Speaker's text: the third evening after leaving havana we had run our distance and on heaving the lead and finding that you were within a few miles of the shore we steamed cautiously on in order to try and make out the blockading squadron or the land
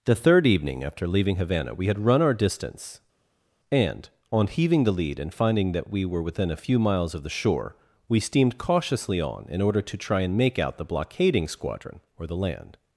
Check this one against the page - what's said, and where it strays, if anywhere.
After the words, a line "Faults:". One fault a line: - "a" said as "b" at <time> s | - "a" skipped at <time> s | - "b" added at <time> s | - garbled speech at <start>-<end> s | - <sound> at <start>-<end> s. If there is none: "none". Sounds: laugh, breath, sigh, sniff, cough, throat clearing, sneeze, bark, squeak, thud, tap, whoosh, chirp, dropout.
the third evening after leaving havana we had run our distance and on heaving the lead and finding that we were within a few miles of the shore we steamed cautiously on in order to try and make out the blockading squadron or the land
Faults:
- "you" said as "we" at 5.9 s